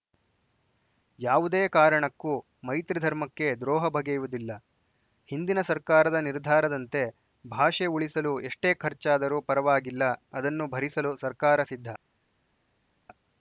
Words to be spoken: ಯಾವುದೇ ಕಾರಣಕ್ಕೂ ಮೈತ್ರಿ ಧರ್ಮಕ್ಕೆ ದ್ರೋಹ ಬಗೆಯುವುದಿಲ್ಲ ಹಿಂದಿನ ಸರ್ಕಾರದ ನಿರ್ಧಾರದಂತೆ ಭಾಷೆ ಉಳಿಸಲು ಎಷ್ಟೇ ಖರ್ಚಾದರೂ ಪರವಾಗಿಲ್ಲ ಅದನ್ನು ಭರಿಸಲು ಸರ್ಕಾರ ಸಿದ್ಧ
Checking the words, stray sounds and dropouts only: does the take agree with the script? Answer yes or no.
yes